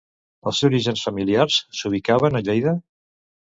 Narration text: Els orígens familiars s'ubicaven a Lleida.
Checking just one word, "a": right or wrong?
right